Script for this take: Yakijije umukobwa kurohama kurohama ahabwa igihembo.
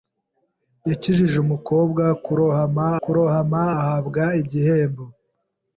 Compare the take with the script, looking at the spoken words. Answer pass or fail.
pass